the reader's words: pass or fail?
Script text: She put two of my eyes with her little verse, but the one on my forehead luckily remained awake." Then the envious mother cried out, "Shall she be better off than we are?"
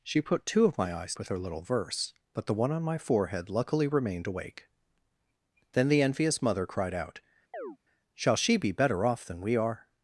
pass